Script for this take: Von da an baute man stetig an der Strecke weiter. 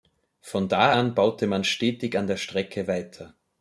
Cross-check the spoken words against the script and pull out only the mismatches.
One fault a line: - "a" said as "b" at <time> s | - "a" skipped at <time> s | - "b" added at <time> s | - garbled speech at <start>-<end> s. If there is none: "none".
none